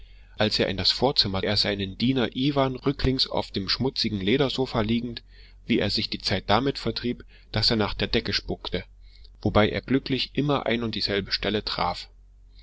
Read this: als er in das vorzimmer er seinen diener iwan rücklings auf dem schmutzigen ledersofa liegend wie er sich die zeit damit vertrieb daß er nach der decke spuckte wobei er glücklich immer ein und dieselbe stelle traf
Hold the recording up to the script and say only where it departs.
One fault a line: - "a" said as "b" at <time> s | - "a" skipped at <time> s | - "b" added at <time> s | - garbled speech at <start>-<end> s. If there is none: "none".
none